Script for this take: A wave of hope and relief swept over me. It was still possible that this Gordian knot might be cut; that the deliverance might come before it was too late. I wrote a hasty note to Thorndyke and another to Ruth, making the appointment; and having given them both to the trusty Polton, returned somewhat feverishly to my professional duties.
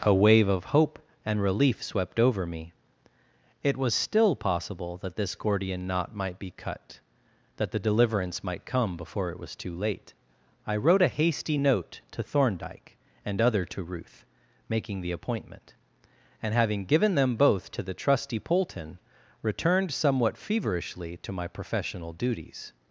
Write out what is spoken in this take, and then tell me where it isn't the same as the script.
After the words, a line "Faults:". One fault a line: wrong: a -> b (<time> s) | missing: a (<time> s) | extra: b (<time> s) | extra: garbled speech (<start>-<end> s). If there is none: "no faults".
A wave of hope and relief swept over me. It was still possible that this Gordian knot might be cut; that the deliverance might come before it was too late. I wrote a hasty note to Thorndyke and other to Ruth, making the appointment; and having given them both to the trusty Polton, returned somewhat feverishly to my professional duties.
Faults:
wrong: another -> other (13.4 s)